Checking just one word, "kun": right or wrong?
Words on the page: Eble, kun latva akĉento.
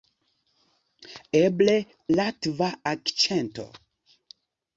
wrong